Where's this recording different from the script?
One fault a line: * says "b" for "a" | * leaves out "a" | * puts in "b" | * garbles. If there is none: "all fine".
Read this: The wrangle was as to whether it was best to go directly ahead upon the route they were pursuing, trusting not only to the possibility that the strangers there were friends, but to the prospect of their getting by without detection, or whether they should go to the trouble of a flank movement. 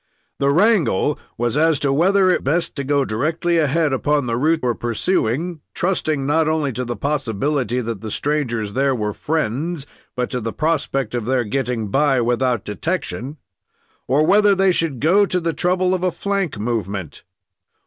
* leaves out "was"
* leaves out "they"